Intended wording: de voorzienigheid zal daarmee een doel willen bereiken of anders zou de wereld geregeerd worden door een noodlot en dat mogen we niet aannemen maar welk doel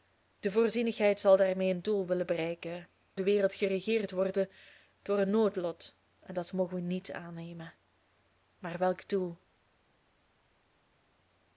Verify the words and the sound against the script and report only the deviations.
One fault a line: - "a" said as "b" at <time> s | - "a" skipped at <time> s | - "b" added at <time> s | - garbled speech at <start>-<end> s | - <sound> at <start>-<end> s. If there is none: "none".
- "of anders zou" skipped at 2.9 s